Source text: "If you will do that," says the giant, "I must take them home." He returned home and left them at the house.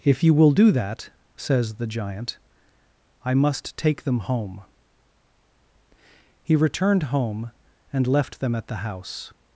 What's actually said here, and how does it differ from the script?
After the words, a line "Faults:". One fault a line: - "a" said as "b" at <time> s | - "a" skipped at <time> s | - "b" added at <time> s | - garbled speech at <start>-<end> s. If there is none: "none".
"If you will do that," says the giant, "I must take them home." He returned home and left them at the house.
Faults:
none